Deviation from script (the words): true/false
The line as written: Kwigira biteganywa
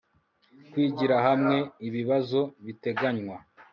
true